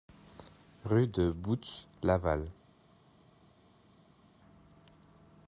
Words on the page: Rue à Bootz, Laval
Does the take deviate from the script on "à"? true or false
true